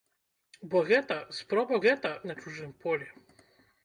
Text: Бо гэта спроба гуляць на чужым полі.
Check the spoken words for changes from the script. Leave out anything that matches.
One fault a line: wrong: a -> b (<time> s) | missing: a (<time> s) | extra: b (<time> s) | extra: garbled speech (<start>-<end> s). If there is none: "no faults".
wrong: гуляць -> гэта (1.9 s)